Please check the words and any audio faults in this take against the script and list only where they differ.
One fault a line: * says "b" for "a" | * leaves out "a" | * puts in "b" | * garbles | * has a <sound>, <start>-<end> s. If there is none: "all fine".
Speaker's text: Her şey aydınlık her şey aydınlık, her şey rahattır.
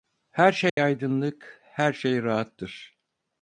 * has a dropout, 0.7-0.8 s
* leaves out "aydınlık her şey"